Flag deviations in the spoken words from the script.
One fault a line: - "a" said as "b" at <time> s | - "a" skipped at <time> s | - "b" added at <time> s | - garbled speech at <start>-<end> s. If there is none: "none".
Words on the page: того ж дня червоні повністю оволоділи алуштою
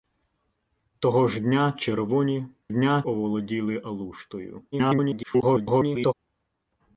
- "повністю" said as "дня" at 2.7 s
- garbled speech at 4.7-6.1 s